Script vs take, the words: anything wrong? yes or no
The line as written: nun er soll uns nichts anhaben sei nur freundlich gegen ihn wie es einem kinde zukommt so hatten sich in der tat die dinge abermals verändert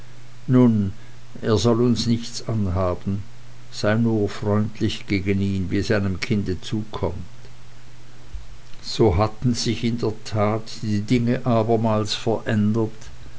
no